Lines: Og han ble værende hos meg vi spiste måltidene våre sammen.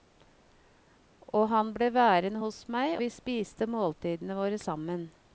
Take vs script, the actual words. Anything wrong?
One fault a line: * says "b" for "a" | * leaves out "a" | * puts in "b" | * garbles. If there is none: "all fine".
all fine